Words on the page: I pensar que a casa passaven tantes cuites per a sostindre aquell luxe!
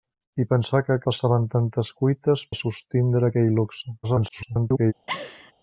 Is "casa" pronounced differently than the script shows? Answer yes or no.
yes